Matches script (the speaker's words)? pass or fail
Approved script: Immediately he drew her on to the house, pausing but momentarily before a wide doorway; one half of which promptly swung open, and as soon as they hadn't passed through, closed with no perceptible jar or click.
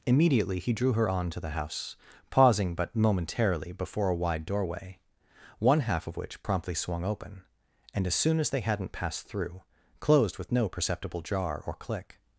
pass